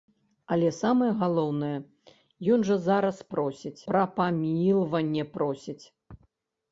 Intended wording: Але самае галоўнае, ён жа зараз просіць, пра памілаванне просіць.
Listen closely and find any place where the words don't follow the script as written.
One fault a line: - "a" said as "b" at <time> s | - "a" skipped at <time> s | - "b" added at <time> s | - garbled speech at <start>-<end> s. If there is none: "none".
none